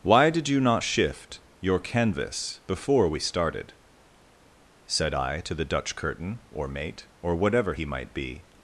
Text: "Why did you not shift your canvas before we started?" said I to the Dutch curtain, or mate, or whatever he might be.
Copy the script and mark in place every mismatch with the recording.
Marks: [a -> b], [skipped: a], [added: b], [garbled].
"Why did you not shift your canvas before we started?" said I to the Dutch curtain, or mate, or whatever he might be.